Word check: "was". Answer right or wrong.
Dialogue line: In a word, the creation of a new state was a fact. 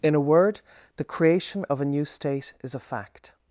wrong